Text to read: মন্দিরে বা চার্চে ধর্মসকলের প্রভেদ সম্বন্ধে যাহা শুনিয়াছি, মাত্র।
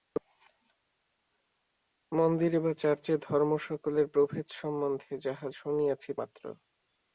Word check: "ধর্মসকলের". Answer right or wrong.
right